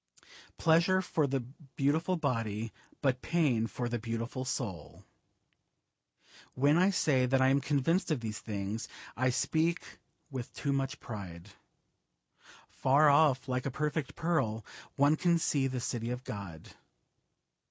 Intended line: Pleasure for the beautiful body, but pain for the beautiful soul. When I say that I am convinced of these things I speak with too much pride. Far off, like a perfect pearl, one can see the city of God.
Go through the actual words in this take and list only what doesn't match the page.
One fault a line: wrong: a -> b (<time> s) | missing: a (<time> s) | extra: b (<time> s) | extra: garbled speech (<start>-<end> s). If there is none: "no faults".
no faults